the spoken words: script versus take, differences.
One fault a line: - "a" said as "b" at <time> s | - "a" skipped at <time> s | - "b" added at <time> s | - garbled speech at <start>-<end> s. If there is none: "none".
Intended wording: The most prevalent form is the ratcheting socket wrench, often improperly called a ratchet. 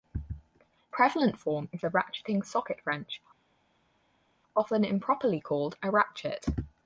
- "most" skipped at 0.2 s